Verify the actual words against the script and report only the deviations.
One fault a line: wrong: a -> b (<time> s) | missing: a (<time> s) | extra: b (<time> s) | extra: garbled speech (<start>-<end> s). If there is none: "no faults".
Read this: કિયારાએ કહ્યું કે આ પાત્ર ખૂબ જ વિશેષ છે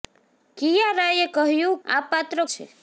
missing: કે (1.8 s)
missing: ખૂબ જ વિશેષ (2.4 s)